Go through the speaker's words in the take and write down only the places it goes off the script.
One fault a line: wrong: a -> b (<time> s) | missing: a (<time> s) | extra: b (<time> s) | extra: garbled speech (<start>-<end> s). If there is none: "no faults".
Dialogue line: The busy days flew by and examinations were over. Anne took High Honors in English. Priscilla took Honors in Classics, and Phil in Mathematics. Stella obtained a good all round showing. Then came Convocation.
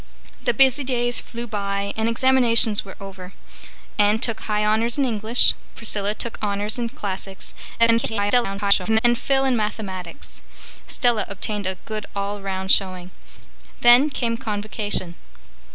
extra: garbled speech (7.8-9.0 s)